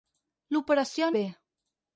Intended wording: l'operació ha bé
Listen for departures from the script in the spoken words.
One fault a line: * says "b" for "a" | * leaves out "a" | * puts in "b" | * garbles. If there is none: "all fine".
all fine